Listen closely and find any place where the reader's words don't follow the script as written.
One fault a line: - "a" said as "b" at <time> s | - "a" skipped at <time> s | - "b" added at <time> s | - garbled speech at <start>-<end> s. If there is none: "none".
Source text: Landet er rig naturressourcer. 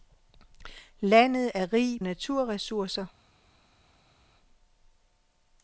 none